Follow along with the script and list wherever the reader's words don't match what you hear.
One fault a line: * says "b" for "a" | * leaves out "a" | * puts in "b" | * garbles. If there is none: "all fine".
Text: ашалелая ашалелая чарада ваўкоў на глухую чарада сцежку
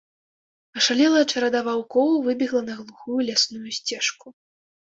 * leaves out "ашалелая"
* puts in "выбегла"
* says "лясную" for "чарада"